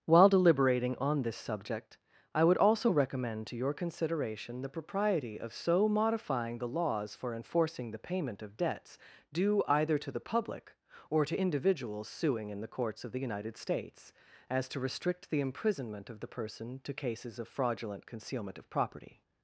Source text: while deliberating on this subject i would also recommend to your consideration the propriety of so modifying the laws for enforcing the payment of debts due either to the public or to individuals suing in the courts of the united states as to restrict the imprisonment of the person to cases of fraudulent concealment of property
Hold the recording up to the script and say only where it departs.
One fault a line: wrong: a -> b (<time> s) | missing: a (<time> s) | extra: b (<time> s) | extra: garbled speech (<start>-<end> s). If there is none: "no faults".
no faults